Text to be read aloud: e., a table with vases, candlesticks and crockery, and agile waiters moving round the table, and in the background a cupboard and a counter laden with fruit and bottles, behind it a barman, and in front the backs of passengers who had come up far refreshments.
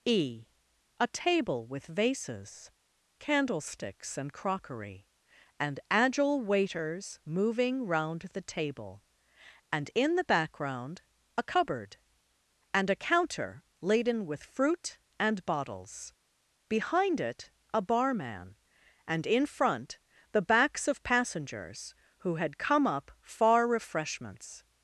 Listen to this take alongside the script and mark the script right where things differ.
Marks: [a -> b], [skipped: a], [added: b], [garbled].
e., a table with vases, candlesticks and crockery, and agile waiters moving round the table, and in the background a cupboard and a counter laden with fruit and bottles, behind it a barman, and in front the backs of passengers who had come up far refreshments.